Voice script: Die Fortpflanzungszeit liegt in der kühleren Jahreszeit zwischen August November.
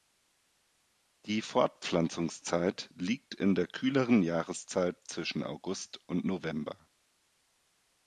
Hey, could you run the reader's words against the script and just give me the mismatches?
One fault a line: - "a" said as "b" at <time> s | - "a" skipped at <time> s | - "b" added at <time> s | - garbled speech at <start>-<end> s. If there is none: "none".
- "und" added at 6.1 s